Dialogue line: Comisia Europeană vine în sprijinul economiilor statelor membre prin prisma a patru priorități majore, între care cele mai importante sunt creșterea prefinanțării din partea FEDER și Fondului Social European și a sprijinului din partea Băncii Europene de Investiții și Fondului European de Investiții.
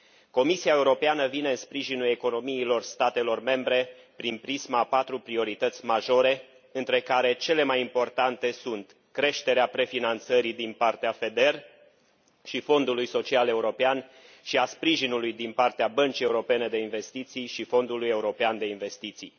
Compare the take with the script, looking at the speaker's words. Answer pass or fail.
pass